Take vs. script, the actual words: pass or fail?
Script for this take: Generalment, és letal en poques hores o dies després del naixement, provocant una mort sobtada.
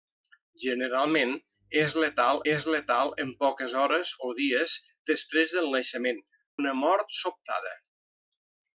fail